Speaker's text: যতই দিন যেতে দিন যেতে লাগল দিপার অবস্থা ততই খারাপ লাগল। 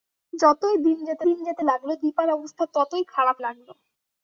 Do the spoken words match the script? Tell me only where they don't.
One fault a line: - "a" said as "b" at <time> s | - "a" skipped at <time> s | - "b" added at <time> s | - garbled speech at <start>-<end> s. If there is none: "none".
none